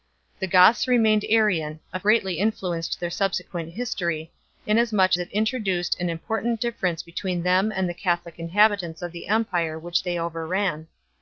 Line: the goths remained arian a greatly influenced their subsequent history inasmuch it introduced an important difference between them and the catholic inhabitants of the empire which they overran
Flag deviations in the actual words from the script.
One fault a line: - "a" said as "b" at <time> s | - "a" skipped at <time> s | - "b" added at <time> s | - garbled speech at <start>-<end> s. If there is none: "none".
none